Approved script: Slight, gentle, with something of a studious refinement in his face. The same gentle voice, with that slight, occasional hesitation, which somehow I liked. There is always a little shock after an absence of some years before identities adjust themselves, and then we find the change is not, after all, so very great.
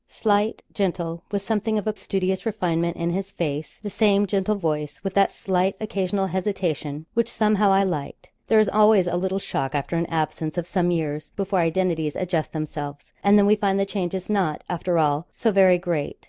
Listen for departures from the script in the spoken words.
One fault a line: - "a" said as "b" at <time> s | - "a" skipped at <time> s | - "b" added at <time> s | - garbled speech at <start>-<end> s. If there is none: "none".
none